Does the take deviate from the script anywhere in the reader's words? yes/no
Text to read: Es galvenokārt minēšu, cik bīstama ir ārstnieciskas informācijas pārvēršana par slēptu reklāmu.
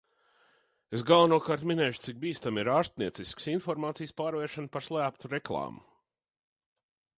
no